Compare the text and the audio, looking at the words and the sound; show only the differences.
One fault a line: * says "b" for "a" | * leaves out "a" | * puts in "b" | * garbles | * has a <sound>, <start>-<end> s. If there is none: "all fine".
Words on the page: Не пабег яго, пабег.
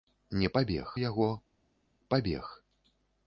all fine